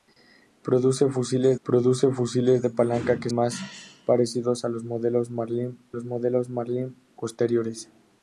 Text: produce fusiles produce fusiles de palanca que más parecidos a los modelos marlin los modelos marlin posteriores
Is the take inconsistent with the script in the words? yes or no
no